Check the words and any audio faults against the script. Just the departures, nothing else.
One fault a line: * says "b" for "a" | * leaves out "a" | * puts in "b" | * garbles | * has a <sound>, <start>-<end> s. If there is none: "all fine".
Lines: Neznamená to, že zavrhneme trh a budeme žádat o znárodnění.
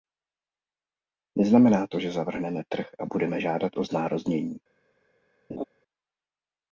* has a laugh, 5.5-5.6 s